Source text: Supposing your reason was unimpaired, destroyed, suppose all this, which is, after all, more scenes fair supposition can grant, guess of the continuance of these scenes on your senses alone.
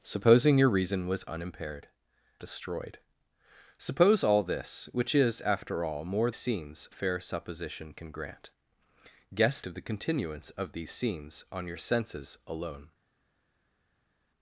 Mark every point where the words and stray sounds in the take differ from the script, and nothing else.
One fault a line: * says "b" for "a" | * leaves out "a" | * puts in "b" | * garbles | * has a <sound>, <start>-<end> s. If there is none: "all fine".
all fine